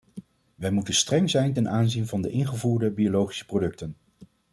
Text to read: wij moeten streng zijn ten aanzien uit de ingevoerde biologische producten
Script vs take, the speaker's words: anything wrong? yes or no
yes